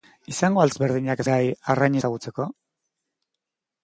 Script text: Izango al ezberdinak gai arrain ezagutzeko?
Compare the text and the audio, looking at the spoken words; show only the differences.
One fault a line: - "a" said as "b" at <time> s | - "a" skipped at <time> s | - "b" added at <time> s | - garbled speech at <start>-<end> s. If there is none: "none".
none